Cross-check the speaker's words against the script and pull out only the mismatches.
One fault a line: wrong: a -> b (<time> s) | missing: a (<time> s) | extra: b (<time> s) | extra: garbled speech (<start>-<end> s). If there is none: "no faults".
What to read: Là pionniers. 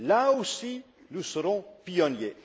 extra: aussi nous serons (0.3 s)